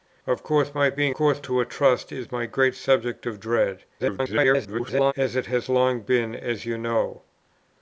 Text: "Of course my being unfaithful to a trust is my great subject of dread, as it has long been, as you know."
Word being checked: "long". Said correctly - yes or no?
yes